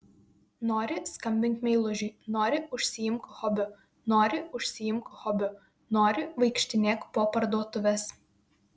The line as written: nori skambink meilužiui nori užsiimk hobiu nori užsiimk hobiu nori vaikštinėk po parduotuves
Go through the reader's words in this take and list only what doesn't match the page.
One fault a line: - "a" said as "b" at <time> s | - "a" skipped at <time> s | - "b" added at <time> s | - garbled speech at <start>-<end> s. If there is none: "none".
none